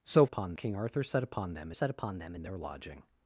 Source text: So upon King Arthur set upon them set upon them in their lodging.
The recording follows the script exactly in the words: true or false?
true